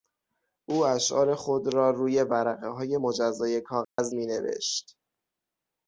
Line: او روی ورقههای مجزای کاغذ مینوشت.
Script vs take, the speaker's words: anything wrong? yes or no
yes